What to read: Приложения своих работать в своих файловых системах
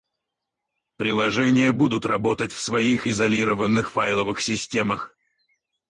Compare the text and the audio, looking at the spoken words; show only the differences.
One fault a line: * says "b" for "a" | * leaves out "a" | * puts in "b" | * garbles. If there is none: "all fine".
* says "будут" for "своих"
* puts in "изолированных"